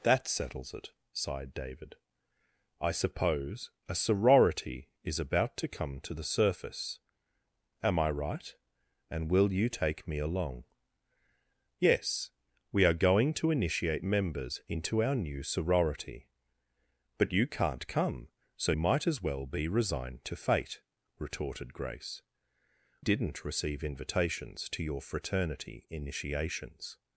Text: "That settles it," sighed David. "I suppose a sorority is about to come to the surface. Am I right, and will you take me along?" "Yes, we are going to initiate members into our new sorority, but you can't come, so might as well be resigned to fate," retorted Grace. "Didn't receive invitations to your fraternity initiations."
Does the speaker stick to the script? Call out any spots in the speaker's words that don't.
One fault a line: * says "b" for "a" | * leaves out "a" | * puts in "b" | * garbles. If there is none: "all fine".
all fine